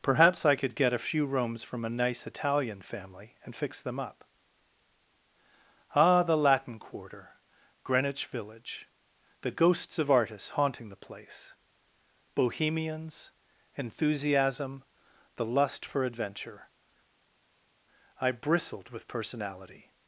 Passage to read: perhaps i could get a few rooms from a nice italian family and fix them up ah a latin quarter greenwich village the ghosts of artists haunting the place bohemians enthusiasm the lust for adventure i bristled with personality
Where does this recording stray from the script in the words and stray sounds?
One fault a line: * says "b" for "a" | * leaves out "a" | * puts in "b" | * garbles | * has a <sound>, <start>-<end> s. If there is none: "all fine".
* says "the" for "a"